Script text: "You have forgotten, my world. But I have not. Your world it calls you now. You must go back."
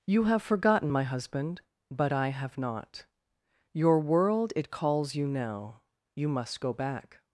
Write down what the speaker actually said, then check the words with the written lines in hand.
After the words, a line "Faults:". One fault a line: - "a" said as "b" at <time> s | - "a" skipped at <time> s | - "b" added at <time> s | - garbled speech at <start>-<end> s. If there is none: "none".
"You have forgotten, my husband. But I have not. Your world it calls you now. You must go back."
Faults:
- "world" said as "husband" at 1.0 s